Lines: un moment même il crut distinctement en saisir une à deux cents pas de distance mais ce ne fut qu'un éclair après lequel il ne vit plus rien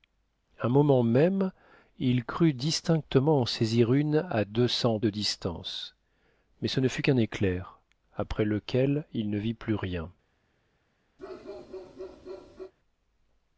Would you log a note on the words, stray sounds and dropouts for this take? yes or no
yes